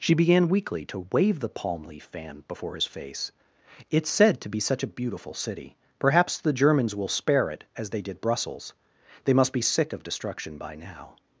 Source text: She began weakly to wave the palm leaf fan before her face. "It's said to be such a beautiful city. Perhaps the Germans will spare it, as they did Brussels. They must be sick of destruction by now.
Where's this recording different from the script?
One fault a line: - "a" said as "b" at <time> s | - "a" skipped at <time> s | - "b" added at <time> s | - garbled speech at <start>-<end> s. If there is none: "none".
- "her" said as "his" at 2.7 s